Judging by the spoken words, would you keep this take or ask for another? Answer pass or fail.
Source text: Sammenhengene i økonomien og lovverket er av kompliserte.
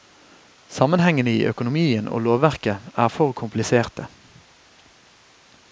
fail